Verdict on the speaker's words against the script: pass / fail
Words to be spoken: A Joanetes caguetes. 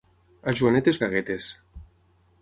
pass